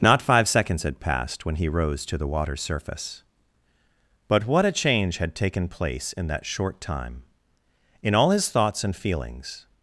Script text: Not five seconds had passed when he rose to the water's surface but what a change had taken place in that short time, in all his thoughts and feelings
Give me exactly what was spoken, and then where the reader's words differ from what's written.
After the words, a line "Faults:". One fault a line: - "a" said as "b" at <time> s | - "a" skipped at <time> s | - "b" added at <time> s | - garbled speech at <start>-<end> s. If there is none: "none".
Not five seconds had passed when he rose to the water's surface but what a change had taken place in that short time, in all his thoughts and feelings
Faults:
none